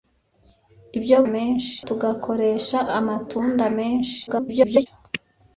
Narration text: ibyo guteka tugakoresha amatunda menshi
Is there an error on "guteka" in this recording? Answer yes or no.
yes